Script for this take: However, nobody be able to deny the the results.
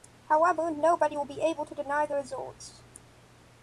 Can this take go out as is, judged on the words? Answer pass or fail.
fail